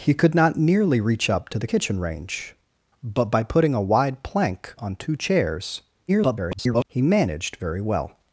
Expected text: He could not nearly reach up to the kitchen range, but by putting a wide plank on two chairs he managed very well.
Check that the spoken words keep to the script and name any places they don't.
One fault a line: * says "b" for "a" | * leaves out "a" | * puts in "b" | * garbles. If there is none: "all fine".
* garbles